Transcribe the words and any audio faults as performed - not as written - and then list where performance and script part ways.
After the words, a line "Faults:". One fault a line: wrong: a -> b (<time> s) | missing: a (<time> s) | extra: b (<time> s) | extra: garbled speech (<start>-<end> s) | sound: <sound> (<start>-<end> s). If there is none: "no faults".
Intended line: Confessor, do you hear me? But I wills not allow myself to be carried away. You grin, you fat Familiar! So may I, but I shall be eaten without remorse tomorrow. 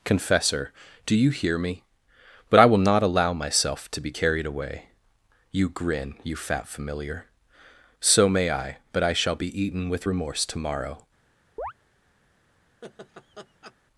Confessor, do you hear me? But I will not allow myself to be carried away. You grin, you fat Familiar! So may I, but I shall be eaten with remorse tomorrow.
Faults:
wrong: wills -> will (2.7 s)
wrong: without -> with (9.9 s)
sound: chirp (11.6-11.7 s)
sound: laugh (12.8-13.8 s)